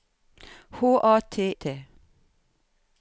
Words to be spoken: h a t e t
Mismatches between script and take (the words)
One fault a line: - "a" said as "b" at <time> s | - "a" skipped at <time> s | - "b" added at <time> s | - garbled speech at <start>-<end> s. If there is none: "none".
- "e" skipped at 1.5 s